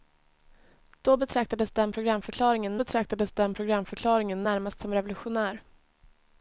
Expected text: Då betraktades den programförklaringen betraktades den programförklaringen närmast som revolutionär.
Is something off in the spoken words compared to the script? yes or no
no